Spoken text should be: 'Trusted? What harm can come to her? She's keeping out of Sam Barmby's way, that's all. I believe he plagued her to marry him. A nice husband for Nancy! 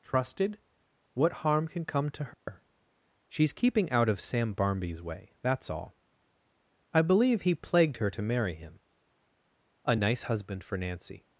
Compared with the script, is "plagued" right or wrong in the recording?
right